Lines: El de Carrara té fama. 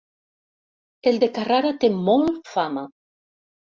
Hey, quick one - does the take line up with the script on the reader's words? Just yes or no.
no